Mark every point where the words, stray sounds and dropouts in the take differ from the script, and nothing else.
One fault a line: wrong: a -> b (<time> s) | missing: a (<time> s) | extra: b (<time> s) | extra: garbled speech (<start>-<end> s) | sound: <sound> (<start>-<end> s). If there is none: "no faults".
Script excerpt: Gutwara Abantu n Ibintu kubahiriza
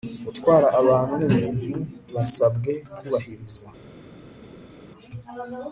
extra: basabwe (2.1 s)